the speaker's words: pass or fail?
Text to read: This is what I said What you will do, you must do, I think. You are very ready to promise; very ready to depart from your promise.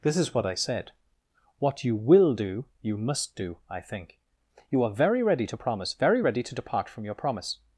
pass